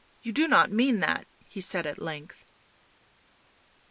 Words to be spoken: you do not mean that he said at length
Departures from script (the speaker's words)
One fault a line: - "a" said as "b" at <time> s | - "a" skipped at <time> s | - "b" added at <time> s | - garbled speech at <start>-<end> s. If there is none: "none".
none